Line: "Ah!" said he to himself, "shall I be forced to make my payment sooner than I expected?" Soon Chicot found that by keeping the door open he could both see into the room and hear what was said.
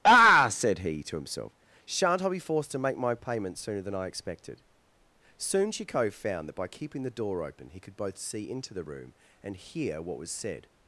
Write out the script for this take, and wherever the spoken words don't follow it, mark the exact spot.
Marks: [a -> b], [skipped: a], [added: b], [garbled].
"Ah!" said he to himself, ["shall -> shan't] I be forced to make my payment sooner than I expected?" Soon Chicot found that by keeping the door open he could both see into the room and hear what was said.